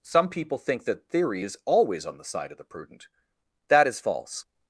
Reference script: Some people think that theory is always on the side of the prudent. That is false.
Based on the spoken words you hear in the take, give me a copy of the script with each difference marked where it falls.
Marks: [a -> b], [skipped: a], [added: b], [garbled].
Some people think that theory is always on the side of the prudent. That is false.